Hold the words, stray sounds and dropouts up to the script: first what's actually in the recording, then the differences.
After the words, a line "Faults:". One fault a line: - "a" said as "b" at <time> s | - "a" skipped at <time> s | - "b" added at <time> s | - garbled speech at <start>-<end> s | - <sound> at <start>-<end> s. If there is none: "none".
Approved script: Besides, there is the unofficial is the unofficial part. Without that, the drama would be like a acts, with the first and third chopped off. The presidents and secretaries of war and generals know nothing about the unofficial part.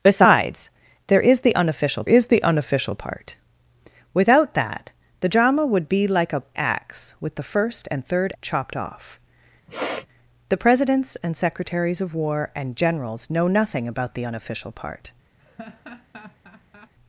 Besides, there is the unofficial is the unofficial part. Without that, the drama would be like a acts, with the first and third chopped off. The presidents and secretaries of war and generals know nothing about the unofficial part.
Faults:
- sniff at 9.7-10.1 s
- laugh at 15.4-16.9 s